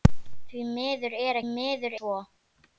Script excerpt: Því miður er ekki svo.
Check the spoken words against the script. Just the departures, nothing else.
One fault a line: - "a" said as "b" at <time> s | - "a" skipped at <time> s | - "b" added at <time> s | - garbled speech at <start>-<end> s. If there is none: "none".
- "ekki" said as "miður" at 1.5 s